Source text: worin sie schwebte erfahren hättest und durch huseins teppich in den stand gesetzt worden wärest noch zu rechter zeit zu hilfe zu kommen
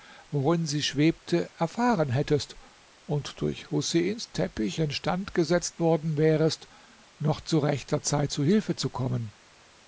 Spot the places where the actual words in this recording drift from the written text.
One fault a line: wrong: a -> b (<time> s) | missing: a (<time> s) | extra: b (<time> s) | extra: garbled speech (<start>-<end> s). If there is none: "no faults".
missing: in (4.8 s)